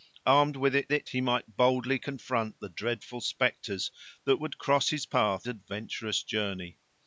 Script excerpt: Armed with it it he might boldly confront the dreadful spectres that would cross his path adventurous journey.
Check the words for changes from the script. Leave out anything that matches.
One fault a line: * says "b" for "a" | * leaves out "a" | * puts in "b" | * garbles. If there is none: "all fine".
all fine